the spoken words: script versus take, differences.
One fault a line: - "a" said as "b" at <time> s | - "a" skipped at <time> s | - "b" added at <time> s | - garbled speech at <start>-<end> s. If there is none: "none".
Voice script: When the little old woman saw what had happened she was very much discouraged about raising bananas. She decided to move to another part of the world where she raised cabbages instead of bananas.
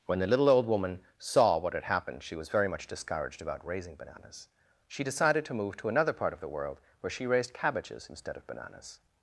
none